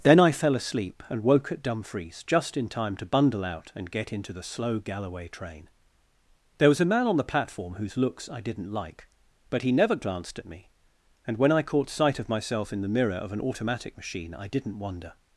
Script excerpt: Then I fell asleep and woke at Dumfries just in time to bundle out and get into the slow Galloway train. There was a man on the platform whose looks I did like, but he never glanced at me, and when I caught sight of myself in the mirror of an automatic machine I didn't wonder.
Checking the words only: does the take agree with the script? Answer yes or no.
no